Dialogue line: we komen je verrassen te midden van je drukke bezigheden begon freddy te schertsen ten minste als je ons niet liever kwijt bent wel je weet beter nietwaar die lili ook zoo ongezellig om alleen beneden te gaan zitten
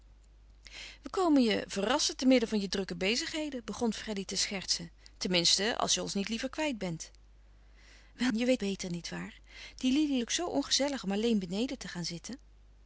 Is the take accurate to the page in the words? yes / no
yes